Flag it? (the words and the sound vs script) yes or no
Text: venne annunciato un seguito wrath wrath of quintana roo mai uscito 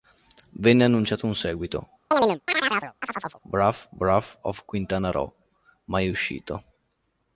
yes